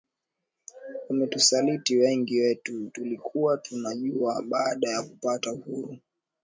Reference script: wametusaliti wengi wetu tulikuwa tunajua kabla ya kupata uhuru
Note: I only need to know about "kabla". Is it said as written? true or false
false